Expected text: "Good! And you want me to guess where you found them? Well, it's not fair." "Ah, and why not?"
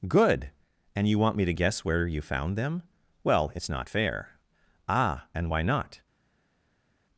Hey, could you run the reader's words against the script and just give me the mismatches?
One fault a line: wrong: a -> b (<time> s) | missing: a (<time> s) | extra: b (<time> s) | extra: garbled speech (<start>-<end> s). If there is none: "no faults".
no faults